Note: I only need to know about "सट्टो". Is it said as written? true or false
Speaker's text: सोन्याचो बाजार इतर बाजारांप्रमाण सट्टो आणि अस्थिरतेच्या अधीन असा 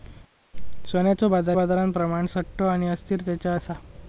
true